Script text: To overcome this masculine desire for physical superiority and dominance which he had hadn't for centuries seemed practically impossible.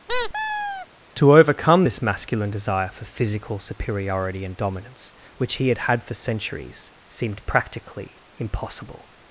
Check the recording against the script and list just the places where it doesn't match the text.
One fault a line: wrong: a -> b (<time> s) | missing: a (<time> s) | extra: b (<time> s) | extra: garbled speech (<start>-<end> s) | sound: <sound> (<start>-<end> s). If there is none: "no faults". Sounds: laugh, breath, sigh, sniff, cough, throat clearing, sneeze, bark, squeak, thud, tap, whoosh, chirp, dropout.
sound: squeak (0.1-0.9 s)
wrong: hadn't -> had (5.9 s)